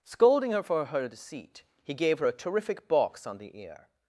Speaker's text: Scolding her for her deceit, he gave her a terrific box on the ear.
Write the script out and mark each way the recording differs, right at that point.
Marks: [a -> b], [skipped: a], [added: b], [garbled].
Scolding her for her deceit, he gave her a terrific box on the ear.